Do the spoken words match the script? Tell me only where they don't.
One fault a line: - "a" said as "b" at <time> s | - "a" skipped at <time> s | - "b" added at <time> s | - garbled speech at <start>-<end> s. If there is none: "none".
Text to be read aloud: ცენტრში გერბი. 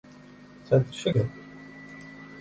none